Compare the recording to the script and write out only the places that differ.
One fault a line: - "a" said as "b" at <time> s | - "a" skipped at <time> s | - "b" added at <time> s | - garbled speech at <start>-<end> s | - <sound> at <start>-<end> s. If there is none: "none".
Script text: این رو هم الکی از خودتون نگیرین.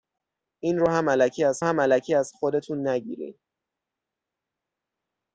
- "هم الکی از" added at 1.6 s